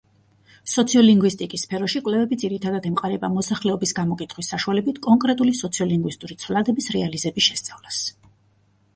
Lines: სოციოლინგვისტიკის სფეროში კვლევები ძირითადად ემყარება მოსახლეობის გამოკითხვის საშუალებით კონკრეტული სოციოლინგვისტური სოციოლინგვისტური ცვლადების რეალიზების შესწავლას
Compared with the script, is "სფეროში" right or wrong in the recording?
right